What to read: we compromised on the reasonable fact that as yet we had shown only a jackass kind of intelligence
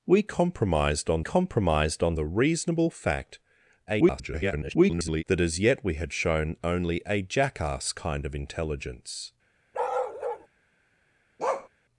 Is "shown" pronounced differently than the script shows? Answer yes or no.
no